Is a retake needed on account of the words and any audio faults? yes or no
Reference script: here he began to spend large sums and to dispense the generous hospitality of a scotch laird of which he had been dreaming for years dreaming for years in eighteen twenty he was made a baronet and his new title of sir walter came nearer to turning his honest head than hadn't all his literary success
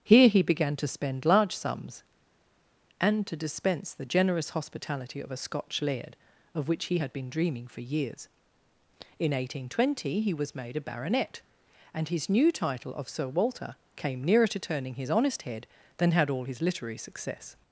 yes